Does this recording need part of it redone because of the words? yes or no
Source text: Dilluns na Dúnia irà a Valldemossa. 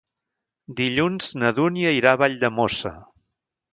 no